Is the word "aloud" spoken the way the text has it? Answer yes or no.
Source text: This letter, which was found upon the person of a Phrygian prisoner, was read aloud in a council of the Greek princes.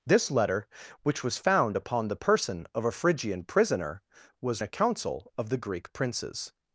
no